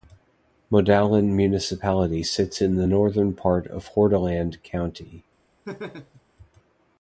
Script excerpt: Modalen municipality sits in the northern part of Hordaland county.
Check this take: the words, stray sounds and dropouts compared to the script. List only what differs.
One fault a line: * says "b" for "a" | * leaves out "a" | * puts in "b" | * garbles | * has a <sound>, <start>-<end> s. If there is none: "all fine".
* has a laugh, 5.6-6.2 s